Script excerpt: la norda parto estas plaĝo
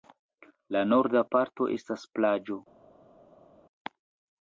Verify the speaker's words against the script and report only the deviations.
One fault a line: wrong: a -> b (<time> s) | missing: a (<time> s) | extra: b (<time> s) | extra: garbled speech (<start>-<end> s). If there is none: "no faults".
no faults